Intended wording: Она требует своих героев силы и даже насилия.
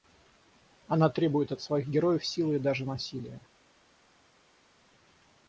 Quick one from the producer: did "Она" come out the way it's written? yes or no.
yes